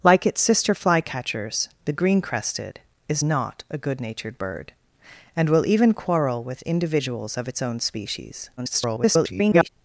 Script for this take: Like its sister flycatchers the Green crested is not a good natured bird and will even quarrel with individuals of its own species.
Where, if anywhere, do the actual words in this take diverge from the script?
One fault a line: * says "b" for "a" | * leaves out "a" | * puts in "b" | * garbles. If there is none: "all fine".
* garbles